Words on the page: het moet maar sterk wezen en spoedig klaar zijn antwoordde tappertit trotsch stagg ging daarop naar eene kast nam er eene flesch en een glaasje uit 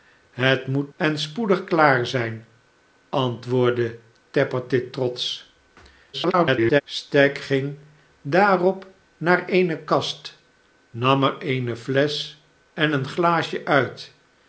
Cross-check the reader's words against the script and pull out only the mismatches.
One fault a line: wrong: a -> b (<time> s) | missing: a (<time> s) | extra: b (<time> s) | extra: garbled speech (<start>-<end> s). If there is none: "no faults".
missing: maar sterk wezen (0.9 s)
extra: garbled speech (6.1-6.8 s)